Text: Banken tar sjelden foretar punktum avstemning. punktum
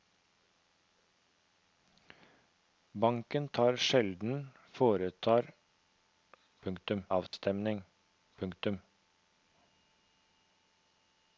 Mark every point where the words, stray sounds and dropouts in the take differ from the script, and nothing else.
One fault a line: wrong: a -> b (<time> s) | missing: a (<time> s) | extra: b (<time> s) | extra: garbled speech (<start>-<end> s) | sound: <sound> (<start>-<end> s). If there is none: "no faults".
sound: dropout (7.3-7.3 s)